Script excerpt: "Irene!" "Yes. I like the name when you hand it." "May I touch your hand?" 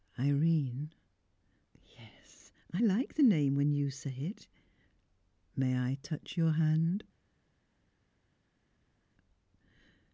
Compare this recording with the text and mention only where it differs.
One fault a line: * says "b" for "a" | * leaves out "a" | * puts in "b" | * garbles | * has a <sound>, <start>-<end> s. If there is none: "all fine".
* says "say" for "hand"